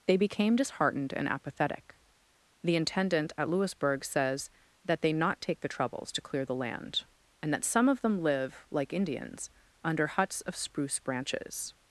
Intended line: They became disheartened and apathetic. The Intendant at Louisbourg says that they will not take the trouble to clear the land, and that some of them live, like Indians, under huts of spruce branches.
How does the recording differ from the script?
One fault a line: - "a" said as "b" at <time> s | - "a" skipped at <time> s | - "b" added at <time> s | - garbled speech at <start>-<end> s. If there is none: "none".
- "will" skipped at 5.1 s
- "trouble" said as "troubles" at 5.7 s